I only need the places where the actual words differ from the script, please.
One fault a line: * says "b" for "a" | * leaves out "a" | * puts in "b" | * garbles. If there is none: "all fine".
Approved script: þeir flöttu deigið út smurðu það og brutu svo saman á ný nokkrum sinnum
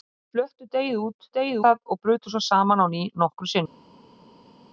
* says "deigið" for "smurðu"